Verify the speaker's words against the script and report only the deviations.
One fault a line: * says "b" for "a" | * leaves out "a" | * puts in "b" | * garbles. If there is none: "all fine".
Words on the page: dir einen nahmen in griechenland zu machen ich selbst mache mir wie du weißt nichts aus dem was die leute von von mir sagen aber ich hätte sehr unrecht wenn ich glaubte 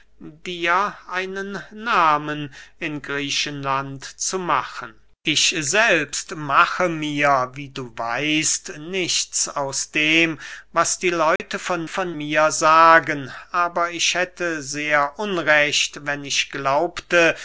all fine